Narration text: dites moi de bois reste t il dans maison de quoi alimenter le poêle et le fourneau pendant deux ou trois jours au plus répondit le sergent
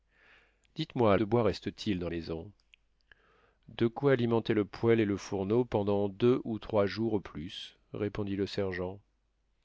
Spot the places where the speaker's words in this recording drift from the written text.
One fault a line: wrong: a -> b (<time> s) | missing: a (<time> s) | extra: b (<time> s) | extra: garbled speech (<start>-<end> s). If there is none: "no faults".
no faults